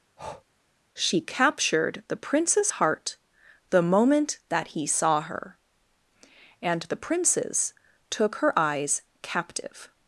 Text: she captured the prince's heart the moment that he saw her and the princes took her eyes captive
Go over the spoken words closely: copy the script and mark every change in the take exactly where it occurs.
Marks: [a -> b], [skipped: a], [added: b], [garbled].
she captured the prince's heart the moment that he saw her and the princes took her eyes captive